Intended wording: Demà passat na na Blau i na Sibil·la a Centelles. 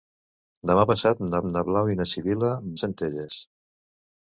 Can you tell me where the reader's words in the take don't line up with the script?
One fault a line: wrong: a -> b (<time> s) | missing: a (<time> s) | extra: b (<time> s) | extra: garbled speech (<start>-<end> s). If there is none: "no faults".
no faults